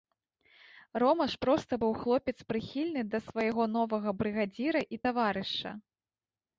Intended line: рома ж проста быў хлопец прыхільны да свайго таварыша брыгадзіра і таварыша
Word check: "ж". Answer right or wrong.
right